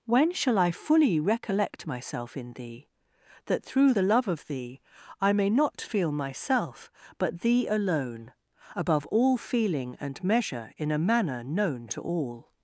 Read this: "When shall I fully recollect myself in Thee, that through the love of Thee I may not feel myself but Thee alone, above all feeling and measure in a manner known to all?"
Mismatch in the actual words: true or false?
false